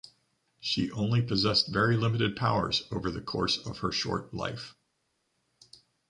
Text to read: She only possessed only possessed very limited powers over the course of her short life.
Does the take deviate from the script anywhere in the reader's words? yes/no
yes